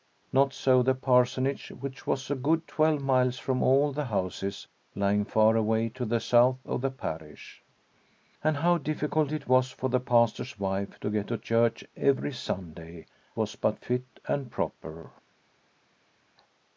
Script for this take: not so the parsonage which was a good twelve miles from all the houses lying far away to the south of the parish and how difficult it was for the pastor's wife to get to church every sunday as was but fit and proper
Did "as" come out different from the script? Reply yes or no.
yes